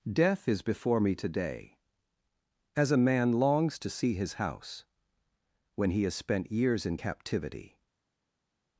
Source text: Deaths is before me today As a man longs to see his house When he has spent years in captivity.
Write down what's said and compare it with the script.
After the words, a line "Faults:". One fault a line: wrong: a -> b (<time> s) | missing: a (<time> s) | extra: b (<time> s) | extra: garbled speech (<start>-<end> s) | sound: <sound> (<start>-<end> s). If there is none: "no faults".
Death is before me today As a man longs to see his house When he has spent years in captivity.
Faults:
wrong: Deaths -> Death (0.1 s)